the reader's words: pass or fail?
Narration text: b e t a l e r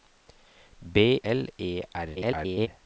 fail